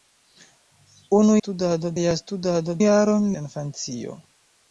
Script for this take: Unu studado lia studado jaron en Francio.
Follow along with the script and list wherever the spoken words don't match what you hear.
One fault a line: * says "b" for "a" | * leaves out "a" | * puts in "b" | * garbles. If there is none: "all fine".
all fine